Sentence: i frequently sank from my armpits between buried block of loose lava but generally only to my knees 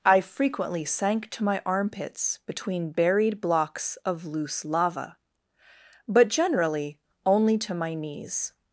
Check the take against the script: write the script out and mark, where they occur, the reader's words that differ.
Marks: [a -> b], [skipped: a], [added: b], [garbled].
i frequently sank [from -> to] my armpits between buried [block -> blocks] of loose lava but generally only to my knees